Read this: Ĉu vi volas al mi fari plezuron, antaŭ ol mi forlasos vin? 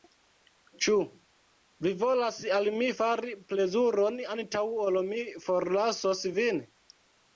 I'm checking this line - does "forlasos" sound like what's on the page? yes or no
yes